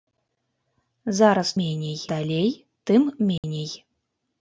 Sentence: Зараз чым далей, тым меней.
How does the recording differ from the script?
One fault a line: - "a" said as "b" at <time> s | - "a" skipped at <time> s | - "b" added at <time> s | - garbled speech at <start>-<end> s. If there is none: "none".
- "чым" said as "меней" at 1.6 s